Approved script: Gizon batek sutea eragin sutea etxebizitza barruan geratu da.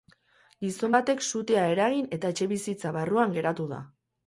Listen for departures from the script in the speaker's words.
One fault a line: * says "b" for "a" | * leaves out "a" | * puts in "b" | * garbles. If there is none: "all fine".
* says "eta" for "sutea"